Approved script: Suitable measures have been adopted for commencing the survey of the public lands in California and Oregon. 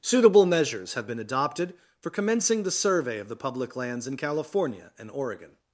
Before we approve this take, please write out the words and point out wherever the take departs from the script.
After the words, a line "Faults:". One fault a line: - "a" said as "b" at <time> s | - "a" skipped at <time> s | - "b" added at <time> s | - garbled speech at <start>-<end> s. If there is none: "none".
Suitable measures have been adopted for commencing the survey of the public lands in California and Oregon.
Faults:
none